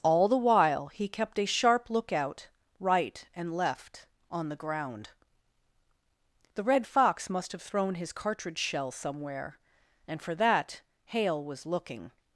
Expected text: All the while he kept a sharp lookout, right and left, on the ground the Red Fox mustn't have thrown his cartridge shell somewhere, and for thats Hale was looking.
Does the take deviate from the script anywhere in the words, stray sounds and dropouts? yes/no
yes